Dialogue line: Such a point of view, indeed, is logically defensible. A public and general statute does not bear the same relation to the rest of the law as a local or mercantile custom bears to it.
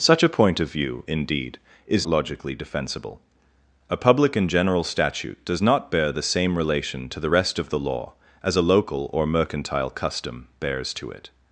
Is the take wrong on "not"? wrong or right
right